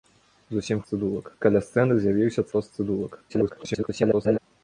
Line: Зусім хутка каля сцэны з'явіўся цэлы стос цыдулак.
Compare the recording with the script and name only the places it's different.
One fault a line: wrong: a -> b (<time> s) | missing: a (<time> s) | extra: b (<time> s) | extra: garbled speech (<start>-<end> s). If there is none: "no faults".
wrong: хутка -> цыдулак (0.9 s)
missing: цэлы (2.5 s)
extra: garbled speech (3.3-4.4 s)